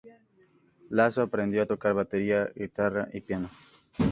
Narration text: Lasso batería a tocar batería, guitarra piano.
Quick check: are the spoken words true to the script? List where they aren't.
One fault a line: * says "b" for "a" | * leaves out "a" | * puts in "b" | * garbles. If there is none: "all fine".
* says "aprendió" for "batería"
* puts in "y"